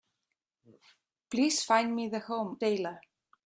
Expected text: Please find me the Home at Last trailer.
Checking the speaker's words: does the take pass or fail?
fail